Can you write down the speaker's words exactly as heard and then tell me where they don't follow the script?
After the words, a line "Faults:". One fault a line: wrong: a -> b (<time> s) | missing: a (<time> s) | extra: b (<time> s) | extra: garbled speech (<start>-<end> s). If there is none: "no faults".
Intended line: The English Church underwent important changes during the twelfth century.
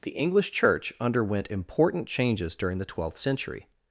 The English Church underwent important changes during the twelfth century.
Faults:
no faults